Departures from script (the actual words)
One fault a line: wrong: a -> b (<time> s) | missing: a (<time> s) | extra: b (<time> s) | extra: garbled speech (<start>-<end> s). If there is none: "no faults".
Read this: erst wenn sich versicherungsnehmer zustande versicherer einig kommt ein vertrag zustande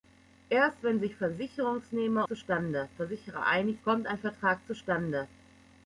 no faults